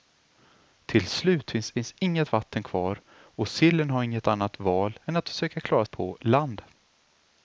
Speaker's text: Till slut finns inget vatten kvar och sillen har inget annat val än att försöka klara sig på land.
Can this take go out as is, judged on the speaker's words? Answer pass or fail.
fail